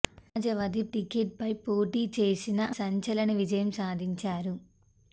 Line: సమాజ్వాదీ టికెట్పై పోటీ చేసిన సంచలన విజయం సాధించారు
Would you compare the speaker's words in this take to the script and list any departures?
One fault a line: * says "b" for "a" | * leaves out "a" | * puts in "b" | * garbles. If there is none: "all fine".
all fine